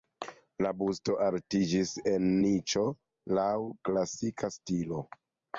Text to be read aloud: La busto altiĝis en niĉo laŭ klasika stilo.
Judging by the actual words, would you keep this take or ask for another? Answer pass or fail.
pass